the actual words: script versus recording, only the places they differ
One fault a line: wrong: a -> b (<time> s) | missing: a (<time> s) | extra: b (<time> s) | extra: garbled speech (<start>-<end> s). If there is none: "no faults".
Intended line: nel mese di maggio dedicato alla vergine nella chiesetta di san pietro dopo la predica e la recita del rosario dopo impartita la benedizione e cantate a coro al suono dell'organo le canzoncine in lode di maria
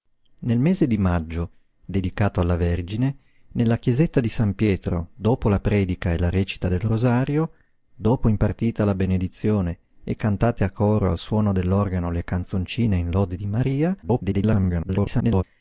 extra: garbled speech (14.0-15.4 s)